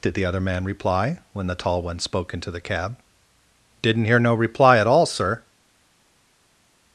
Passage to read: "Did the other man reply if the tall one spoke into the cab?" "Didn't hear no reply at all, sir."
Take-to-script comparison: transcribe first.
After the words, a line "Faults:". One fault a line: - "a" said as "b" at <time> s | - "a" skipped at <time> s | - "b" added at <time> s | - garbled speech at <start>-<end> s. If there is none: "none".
"Did the other man reply when the tall one spoke into the cab?" "Didn't hear no reply at all, sir."
Faults:
- "if" said as "when" at 1.3 s